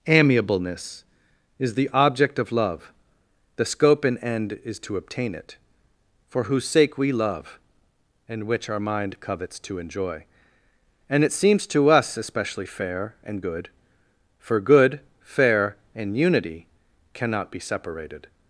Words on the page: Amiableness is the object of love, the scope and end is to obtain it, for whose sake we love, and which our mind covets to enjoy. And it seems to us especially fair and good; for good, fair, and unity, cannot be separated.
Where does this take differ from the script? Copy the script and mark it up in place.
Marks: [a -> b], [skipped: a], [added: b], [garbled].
Amiableness is the object of love, the scope and end is to obtain it, for whose sake we love, and which our mind covets to enjoy. And it seems to us especially fair and good; for good, fair, and unity, cannot be separated.